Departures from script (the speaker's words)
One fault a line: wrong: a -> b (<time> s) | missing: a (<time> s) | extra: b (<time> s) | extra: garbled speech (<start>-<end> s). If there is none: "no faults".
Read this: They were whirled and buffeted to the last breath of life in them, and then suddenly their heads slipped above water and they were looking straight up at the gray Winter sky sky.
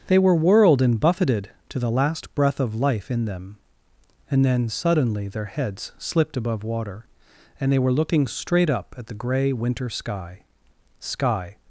no faults